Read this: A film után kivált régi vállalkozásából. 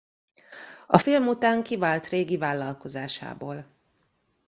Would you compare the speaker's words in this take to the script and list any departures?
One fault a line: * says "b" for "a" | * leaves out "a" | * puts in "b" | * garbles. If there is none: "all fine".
all fine